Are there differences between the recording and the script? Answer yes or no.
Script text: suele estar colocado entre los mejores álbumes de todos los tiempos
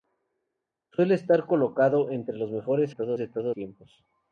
yes